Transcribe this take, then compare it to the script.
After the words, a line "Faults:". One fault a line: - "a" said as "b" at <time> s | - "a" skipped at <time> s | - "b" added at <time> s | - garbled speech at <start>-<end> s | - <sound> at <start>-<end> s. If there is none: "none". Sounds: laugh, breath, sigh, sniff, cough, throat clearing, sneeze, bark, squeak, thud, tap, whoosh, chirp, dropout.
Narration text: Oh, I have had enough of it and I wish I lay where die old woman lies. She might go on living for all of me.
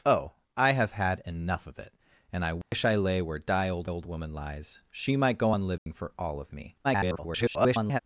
Oh, I have had enough of it and I wish I lay where die old old woman lies. She might go on living for all of me. [garbled]
Faults:
- dropout at 2.6-2.7 s
- "old" added at 3.8 s
- dropout at 5.8-5.9 s
- garbled speech at 6.8-8.0 s